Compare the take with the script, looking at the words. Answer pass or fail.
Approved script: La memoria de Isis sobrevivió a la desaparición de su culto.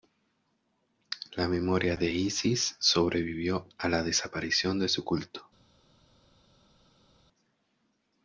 pass